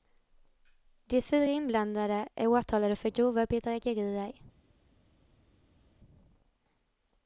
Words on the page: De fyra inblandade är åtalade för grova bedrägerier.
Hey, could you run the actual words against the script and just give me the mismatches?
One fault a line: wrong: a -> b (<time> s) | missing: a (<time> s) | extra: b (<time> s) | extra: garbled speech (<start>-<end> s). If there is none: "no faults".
no faults